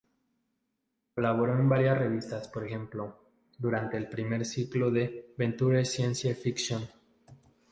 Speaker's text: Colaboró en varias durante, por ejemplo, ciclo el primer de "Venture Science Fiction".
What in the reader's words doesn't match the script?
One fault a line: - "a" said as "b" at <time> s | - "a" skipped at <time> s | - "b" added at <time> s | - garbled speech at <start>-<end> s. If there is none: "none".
- "durante" said as "revistas" at 1.9 s
- "ciclo" said as "durante" at 3.6 s
- "ciclo" added at 4.4 s